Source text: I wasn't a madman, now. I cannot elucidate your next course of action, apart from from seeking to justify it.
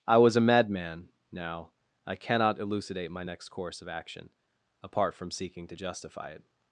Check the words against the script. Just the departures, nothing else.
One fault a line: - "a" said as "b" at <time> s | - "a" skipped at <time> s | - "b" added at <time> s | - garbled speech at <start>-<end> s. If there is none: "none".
- "wasn't" said as "was" at 0.2 s
- "your" said as "my" at 3.1 s
- "from" skipped at 5.3 s